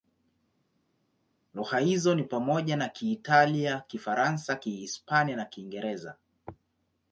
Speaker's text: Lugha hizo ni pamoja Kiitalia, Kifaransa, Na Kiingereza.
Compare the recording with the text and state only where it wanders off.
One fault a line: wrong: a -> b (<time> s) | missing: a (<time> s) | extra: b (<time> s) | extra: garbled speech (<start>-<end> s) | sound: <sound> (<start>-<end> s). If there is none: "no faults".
extra: na (2.8 s)
extra: Kihispania (4.6 s)